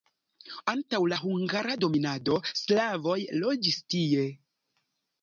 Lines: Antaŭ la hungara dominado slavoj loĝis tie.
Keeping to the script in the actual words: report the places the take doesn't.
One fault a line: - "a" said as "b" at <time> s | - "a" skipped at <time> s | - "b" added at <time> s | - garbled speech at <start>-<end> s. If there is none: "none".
none